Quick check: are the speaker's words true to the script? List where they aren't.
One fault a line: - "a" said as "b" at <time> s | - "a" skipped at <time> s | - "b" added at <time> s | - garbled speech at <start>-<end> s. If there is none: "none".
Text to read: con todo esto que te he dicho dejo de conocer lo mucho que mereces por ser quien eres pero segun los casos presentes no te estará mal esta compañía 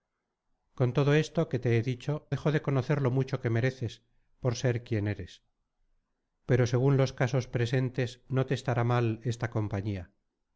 none